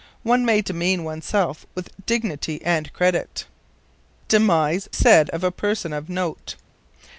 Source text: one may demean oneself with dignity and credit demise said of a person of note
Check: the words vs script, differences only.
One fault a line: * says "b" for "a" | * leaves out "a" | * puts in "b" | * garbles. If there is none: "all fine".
all fine